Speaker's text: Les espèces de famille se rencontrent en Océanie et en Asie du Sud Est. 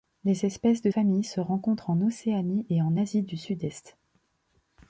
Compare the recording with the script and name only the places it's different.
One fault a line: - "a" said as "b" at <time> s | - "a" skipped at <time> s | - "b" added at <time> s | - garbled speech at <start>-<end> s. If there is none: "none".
none